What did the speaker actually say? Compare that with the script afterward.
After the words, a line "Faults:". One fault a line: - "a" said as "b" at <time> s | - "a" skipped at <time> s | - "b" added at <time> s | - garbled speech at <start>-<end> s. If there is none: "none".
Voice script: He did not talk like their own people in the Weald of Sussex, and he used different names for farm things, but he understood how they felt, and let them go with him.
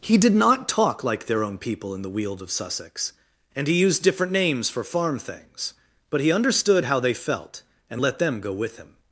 He did not talk like their own people in the Weald of Sussex, and he used different names for farm things, but he understood how they felt, and let them go with him.
Faults:
none